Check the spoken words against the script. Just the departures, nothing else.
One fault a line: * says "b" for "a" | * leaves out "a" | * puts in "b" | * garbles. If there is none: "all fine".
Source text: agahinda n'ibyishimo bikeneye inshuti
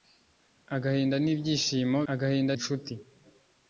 * says "agahinda" for "bikeneye"